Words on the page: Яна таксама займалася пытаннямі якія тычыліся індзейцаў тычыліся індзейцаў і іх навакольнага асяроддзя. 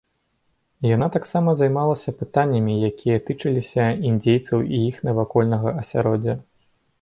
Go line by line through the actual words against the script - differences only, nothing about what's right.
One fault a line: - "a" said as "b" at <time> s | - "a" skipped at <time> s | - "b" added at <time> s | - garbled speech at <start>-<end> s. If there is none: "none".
- "тычыліся індзейцаў" skipped at 4.7 s